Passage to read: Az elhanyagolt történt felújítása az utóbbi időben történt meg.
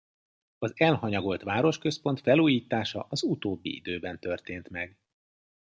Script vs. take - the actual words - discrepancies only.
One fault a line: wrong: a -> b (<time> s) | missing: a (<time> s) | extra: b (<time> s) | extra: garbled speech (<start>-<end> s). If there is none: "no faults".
wrong: történt -> városközpont (1.4 s)